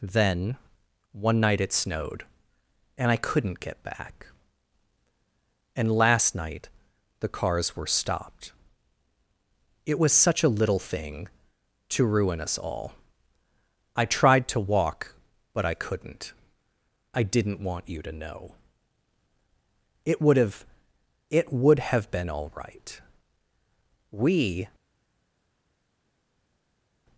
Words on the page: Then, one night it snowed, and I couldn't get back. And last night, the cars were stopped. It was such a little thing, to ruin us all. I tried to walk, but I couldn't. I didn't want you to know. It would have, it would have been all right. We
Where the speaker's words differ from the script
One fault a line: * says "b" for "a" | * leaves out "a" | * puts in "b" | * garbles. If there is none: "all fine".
all fine